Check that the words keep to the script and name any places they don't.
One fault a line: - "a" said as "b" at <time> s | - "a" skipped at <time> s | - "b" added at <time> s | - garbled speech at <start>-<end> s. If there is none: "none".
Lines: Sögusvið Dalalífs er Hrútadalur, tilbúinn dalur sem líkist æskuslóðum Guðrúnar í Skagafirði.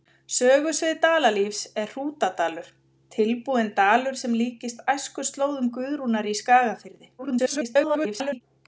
- garbled speech at 7.2-8.4 s